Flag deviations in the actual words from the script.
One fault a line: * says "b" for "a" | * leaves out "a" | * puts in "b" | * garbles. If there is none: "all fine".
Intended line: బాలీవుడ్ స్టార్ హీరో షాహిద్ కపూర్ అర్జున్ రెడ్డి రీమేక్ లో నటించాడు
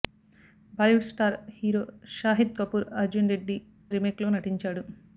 all fine